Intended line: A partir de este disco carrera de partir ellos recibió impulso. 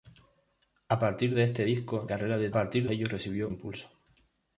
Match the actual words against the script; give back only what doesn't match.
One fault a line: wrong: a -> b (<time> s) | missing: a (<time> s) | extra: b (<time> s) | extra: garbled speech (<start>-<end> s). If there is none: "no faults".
no faults